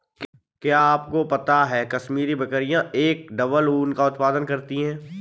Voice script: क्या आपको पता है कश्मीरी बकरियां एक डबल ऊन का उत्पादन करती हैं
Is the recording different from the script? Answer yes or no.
no